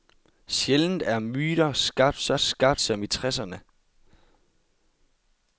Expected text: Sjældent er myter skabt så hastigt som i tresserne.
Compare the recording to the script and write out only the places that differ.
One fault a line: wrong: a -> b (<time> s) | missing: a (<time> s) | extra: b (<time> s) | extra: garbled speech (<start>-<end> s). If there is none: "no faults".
wrong: hastigt -> skabt (2.4 s)